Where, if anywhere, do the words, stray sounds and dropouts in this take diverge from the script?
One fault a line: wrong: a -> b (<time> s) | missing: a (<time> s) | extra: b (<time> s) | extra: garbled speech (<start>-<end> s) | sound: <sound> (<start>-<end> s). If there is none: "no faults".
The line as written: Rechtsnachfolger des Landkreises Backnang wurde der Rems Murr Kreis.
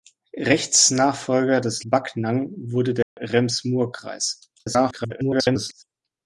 missing: Landkreises (1.8 s)
sound: dropout (3.0-3.2 s)
extra: garbled speech (4.6-5.8 s)